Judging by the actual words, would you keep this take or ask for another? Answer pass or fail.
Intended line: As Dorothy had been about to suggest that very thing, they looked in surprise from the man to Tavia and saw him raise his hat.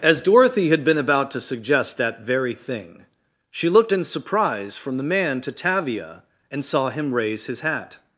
fail